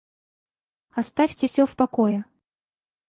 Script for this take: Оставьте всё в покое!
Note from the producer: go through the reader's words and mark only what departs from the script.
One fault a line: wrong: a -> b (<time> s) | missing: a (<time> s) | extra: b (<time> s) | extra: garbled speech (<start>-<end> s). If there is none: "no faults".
no faults